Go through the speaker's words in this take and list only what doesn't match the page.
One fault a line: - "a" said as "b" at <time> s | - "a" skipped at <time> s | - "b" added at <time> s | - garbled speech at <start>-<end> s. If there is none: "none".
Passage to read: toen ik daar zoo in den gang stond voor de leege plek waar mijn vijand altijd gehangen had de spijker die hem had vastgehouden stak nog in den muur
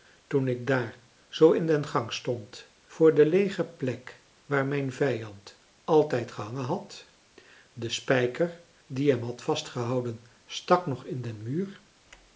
none